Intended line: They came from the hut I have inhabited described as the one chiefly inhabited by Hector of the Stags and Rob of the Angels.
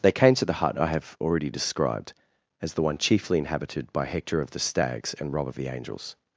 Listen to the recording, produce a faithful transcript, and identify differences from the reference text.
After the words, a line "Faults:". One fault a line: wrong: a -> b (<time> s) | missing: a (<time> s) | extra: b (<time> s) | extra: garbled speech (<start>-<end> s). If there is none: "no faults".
They came to the hut I have already described as the one chiefly inhabited by Hector of the Stags and Rob of the Angels.
Faults:
wrong: from -> to (0.3 s)
wrong: inhabited -> already (1.2 s)